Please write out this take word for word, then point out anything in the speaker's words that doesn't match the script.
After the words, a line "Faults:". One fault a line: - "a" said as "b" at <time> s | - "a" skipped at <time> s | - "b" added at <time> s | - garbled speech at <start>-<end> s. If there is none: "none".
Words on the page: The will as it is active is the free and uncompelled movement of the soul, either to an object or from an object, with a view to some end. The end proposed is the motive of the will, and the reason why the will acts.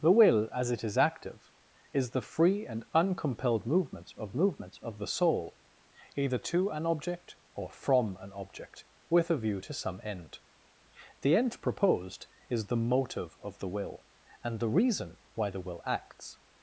The will as it is active is the free and uncompelled movement of movement of the soul, either to an object or from an object, with a view to some end. The end proposed is the motive of the will, and the reason why the will acts.
Faults:
- "movement of" added at 4.4 s